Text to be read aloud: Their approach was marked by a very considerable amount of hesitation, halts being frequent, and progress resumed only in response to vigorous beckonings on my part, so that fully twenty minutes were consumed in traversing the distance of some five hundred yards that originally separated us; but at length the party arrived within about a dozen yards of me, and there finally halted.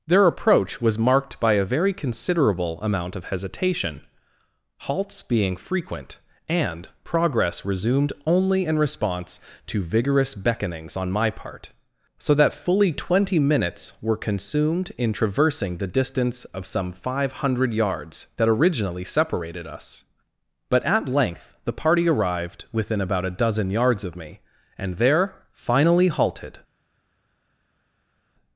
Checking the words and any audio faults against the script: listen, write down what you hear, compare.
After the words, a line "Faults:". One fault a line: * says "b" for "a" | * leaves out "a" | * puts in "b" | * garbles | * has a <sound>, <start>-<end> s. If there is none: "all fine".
Their approach was marked by a very considerable amount of hesitation, halts being frequent, and progress resumed only in response to vigorous beckonings on my part, so that fully twenty minutes were consumed in traversing the distance of some five hundred yards that originally separated us; but at length the party arrived within about a dozen yards of me, and there finally halted.
Faults:
all fine